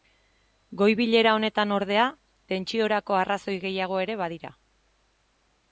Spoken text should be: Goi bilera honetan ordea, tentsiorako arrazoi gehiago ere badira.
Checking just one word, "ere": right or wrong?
right